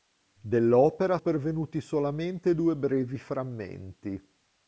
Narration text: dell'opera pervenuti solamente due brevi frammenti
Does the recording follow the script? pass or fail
pass